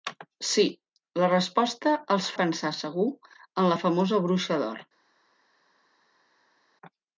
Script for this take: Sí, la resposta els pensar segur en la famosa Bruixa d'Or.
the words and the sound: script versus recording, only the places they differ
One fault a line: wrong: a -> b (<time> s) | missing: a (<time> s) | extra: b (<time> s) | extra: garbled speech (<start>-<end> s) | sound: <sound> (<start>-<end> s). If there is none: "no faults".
no faults